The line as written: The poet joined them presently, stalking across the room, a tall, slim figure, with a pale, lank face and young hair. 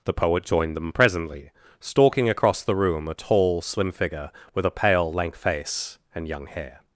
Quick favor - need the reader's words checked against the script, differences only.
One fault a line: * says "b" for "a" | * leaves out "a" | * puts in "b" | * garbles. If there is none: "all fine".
all fine